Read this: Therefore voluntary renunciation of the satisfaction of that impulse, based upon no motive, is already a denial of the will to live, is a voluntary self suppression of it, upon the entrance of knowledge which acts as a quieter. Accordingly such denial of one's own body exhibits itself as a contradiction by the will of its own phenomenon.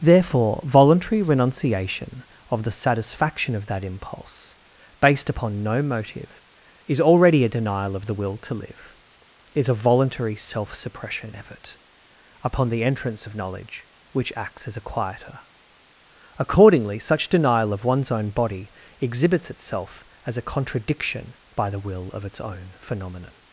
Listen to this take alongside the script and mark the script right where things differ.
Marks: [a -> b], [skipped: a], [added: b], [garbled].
Therefore voluntary renunciation of the satisfaction of that impulse, based upon no motive, is already a denial of the will to live, is a voluntary self suppression [of it, -> effort] upon the entrance of knowledge which acts as a quieter. Accordingly such denial of one's own body exhibits itself as a contradiction by the will of its own phenomenon.